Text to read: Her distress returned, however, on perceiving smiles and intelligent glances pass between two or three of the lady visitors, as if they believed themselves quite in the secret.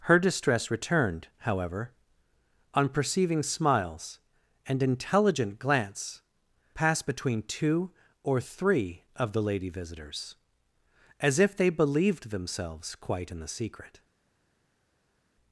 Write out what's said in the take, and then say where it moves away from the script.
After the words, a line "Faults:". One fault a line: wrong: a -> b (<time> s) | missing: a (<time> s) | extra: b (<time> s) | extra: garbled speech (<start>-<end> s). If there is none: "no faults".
Her distress returned, however, on perceiving smiles and intelligent glance pass between two or three of the lady visitors, as if they believed themselves quite in the secret.
Faults:
wrong: glances -> glance (5.6 s)